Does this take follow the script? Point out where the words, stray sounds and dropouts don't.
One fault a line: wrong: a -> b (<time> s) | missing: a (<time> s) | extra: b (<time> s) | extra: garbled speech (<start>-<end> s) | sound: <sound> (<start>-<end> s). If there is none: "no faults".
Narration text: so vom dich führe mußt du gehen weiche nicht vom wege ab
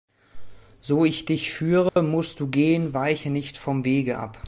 wrong: vom -> ich (1.1 s)
sound: dropout (1.9-2.0 s)